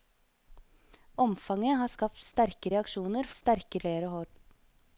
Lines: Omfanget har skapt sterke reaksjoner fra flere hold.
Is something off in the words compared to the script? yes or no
yes